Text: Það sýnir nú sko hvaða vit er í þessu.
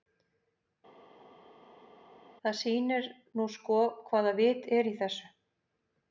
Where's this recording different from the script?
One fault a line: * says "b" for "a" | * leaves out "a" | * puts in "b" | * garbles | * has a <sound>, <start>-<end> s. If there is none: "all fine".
all fine